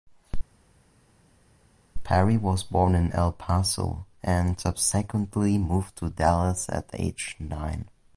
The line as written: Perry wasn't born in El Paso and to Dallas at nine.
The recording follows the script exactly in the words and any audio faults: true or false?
false